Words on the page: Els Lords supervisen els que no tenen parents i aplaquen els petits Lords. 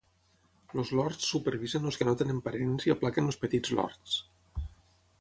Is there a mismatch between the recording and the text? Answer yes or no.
no